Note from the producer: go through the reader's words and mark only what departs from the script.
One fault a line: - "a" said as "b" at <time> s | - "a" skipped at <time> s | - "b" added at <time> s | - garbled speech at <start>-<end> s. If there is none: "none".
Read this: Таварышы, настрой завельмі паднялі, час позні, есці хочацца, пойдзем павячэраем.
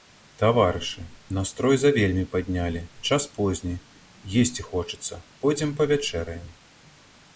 none